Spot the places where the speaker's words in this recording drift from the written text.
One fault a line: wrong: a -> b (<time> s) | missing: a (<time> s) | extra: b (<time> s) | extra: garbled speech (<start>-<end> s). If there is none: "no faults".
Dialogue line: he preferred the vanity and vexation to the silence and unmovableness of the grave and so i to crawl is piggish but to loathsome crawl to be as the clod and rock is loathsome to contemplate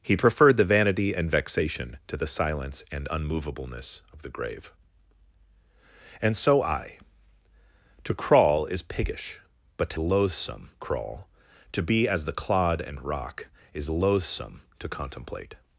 no faults